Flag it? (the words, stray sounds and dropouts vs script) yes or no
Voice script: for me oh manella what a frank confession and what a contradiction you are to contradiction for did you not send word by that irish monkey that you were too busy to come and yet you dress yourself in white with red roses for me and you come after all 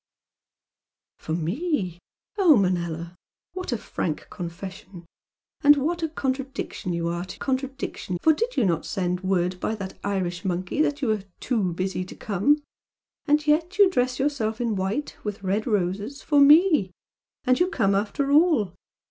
no